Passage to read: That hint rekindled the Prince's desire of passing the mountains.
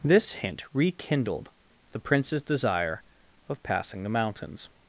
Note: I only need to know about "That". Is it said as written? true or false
false